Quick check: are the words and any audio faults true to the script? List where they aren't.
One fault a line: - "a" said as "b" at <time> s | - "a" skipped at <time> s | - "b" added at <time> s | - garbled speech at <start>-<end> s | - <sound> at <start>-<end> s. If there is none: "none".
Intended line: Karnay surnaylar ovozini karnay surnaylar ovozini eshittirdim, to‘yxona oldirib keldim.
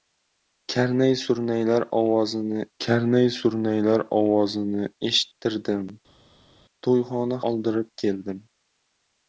none